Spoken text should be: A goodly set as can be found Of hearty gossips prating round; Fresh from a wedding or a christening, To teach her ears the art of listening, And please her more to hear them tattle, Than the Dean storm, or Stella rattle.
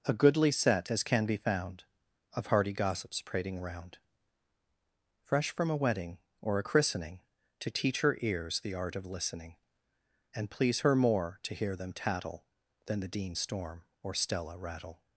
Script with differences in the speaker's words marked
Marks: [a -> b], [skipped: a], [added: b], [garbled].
A goodly set as can be found Of hearty gossips prating round; Fresh from a wedding or a christening, To teach her ears the art of listening, And please her more to hear them tattle, Than the Dean storm, or Stella rattle.